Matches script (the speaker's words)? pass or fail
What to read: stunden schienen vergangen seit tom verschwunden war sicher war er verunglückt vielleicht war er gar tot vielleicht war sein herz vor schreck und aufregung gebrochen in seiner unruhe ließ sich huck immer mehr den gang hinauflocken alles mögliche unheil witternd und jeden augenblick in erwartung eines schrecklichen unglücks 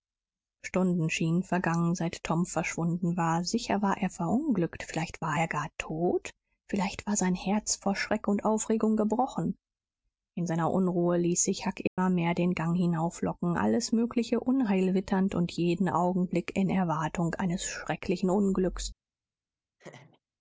pass